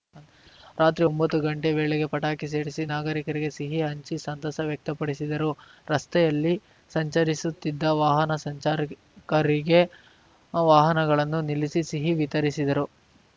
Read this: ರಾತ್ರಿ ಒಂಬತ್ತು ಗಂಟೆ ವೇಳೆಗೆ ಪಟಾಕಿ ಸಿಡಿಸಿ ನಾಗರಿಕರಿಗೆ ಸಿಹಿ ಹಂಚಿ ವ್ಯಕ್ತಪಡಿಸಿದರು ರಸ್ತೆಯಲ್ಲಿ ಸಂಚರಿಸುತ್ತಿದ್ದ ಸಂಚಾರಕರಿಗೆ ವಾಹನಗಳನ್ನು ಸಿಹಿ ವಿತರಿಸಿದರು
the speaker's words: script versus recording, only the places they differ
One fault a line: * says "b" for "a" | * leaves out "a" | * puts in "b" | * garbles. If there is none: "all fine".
* puts in "ಸಂತಸ"
* puts in "ವಾಹನ"
* puts in "ನಿಲ್ಲಿಸಿ"